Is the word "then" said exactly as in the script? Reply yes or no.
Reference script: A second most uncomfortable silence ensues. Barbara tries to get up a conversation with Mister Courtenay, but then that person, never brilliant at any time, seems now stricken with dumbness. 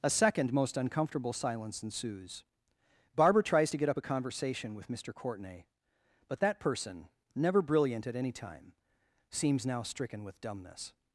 no